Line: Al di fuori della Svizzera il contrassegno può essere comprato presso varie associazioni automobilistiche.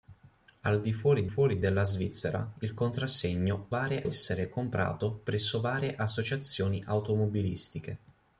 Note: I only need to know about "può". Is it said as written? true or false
false